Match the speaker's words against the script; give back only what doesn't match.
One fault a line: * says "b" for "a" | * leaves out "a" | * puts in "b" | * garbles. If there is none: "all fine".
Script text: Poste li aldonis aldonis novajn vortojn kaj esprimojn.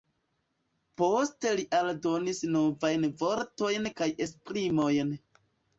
* leaves out "aldonis"